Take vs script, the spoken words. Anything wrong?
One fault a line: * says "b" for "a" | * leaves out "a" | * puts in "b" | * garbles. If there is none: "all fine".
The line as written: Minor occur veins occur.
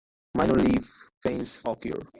* says "leaf" for "occur"